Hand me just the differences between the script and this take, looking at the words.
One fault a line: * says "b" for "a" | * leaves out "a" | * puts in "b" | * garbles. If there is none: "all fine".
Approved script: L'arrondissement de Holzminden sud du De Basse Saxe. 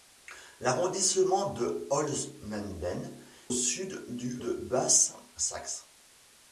all fine